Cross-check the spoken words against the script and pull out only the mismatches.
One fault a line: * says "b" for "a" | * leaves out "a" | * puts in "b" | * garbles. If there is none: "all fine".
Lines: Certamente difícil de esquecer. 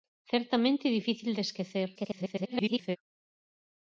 * garbles